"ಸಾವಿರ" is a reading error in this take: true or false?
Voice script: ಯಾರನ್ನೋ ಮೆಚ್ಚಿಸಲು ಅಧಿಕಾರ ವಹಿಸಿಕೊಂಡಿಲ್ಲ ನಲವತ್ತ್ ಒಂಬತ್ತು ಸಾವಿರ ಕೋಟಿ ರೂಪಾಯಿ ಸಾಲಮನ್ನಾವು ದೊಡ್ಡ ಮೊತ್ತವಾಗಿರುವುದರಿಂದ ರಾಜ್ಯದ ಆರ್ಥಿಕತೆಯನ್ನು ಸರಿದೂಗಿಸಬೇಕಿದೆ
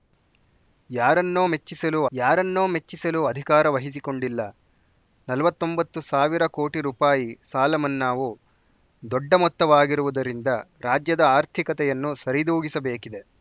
false